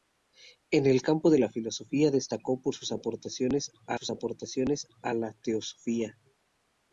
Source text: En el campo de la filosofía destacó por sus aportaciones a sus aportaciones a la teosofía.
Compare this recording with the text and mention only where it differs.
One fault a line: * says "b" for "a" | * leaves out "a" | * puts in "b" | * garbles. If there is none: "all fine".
all fine